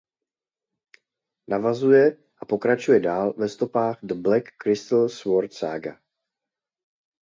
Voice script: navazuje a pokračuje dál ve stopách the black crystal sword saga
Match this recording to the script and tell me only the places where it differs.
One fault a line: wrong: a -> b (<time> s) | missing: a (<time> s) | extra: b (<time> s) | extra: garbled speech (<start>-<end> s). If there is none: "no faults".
no faults